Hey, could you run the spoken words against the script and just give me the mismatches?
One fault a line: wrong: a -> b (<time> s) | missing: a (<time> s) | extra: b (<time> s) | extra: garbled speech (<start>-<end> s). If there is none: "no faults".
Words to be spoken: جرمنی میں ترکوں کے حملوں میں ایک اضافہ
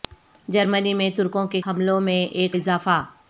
no faults